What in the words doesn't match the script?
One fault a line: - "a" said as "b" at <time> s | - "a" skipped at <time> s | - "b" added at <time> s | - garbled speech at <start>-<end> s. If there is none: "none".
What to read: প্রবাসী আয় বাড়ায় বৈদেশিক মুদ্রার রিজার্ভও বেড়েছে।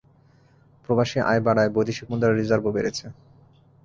none